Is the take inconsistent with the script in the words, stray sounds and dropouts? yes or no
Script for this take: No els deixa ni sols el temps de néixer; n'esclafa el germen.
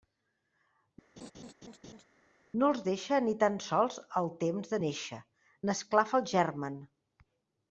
yes